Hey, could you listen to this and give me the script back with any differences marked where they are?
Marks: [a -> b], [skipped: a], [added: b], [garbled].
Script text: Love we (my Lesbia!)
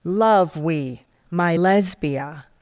Love we (my Lesbia!)